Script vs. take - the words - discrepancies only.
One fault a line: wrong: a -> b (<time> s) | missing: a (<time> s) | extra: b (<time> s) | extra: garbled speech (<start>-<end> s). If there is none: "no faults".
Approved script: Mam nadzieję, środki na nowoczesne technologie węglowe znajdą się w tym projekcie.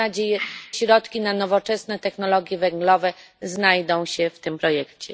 no faults